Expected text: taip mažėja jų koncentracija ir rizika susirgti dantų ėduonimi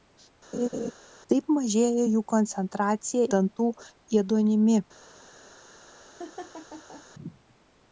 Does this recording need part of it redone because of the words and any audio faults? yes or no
yes